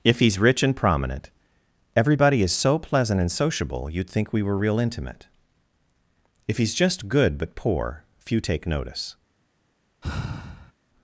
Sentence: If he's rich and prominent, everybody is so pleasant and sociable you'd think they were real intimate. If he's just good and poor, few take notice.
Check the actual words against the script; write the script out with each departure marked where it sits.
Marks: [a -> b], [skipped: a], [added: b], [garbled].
If he's rich and prominent, everybody is so pleasant and sociable you'd think [they -> we] were real intimate. If he's just good [and -> but] poor, few take notice.